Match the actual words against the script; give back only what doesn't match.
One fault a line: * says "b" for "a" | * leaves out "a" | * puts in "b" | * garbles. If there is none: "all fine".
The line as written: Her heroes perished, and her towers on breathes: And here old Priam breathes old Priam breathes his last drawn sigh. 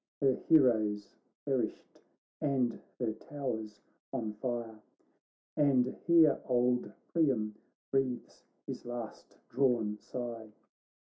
* says "fire" for "breathes"
* leaves out "old Priam breathes"